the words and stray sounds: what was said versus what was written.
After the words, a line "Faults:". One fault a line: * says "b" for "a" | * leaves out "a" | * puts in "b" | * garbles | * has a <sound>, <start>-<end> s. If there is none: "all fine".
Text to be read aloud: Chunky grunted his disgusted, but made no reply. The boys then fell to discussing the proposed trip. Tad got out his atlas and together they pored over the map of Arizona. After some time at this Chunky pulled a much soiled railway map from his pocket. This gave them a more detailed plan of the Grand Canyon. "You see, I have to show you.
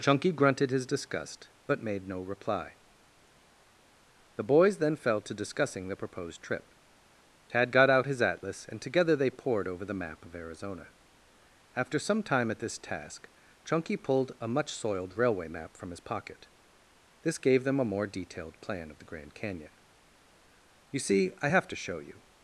Chunky grunted his disgust, but made no reply. The boys then fell to discussing the proposed trip. Tad got out his atlas and together they pored over the map of Arizona. After some time at this task, Chunky pulled a much soiled railway map from his pocket. This gave them a more detailed plan of the Grand Canyon. "You see, I have to show you.
Faults:
* says "disgust" for "disgusted"
* puts in "task"